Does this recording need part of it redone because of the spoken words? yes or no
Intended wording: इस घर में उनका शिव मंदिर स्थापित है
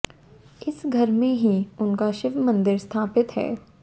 yes